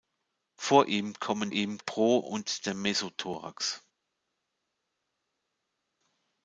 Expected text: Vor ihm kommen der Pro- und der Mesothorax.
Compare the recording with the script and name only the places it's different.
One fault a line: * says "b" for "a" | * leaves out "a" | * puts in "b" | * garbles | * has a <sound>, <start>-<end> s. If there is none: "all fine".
* says "ihm" for "der"